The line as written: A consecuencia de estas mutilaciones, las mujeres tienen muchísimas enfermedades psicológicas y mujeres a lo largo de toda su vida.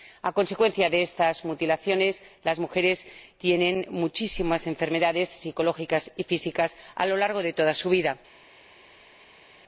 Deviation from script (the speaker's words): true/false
true